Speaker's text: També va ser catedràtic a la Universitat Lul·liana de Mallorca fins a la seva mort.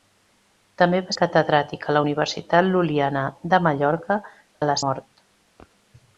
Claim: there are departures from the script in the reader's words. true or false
true